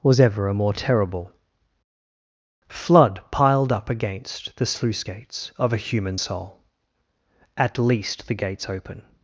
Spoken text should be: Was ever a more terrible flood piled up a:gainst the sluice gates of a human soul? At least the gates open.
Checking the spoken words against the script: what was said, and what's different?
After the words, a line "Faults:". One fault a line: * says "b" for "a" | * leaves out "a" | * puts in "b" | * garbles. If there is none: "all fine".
Was ever a more terrible flood piled up a:gainst the sluice gates of a human soul? At least the gates open.
Faults:
all fine